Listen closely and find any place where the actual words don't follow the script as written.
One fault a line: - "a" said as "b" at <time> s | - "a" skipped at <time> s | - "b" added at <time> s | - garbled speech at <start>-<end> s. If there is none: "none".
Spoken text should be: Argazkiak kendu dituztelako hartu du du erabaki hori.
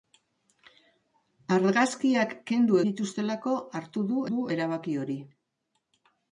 none